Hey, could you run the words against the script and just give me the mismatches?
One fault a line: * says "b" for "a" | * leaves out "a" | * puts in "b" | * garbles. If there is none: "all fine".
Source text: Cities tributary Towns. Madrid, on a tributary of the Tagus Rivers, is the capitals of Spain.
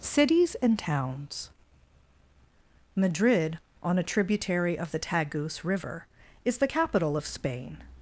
* says "and" for "tributary"
* says "River" for "Rivers"
* says "capital" for "capitals"